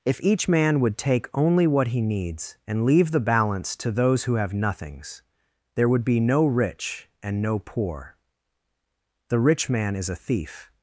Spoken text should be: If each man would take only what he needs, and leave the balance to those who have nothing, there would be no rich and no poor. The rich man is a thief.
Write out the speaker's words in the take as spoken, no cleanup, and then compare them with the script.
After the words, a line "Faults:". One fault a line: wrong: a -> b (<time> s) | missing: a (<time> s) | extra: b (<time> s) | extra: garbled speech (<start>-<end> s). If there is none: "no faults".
If each man would take only what he needs, and leave the balance to those who have nothings, there would be no rich and no poor. The rich man is a thief.
Faults:
wrong: nothing -> nothings (4.5 s)